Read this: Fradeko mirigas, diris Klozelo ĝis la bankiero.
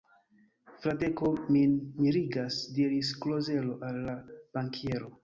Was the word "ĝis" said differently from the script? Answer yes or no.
yes